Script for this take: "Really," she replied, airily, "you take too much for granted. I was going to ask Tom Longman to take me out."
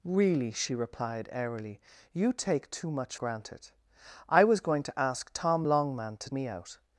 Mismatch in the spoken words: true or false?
true